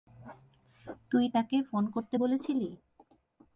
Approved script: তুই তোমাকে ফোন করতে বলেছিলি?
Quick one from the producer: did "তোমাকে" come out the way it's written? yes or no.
no